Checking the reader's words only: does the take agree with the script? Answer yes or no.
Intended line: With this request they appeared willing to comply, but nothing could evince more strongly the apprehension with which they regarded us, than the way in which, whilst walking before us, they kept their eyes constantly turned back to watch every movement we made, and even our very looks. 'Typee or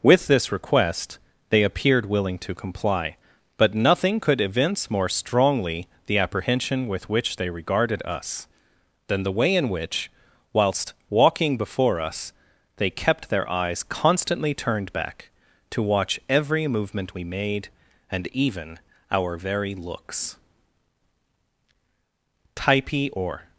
yes